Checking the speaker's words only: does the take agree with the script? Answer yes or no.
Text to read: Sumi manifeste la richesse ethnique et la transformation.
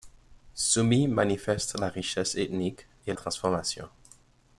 no